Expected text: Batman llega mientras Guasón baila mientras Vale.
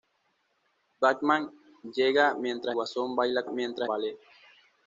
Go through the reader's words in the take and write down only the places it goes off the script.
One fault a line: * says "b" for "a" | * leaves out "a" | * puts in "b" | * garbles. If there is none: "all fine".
all fine